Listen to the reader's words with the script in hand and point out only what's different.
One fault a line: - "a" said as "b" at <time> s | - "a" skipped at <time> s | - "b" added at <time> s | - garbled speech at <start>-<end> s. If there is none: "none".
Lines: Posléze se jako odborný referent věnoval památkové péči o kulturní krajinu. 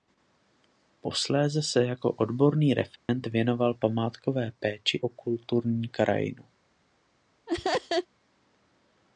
none